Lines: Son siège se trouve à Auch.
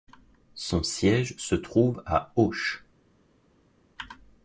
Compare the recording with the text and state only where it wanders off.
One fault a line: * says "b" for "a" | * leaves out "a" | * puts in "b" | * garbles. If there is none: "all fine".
all fine